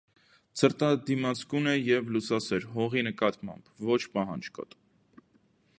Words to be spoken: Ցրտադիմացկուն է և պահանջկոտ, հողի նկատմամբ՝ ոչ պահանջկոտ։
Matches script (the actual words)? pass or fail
fail